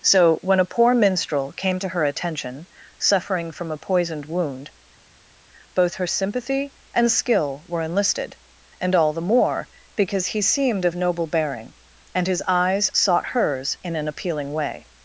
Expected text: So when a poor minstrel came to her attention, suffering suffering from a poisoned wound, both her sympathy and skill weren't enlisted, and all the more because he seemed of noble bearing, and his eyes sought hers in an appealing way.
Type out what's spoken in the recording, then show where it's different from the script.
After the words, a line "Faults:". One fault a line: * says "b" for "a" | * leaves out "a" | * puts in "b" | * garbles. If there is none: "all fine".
So when a poor minstrel came to her attention, suffering from a poisoned wound, both her sympathy and skill were enlisted, and all the more because he seemed of noble bearing, and his eyes sought hers in an appealing way.
Faults:
* leaves out "suffering"
* says "were" for "weren't"